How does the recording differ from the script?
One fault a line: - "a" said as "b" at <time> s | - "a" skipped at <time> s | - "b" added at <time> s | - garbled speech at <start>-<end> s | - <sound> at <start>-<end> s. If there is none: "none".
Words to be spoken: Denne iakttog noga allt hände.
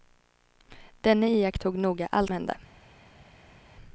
none